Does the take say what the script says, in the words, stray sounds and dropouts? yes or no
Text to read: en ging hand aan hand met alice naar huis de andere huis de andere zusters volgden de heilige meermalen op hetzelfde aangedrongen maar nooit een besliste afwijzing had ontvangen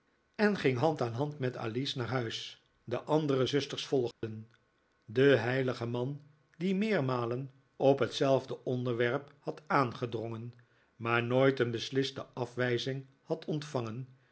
no